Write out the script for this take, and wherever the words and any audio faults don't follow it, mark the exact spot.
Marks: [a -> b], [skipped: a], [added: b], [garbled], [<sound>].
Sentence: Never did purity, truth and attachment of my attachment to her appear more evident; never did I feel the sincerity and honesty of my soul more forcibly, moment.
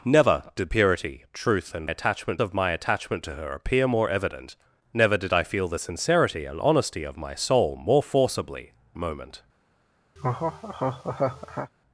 Never did purity, truth and attachment of my attachment to her appear more evident; never did I feel the sincerity and honesty of my soul more forcibly, moment. [laugh]